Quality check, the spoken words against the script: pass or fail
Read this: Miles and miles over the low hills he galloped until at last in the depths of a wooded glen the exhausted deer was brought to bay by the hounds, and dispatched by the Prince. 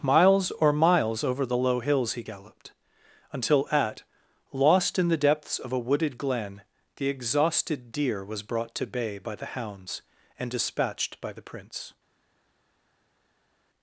fail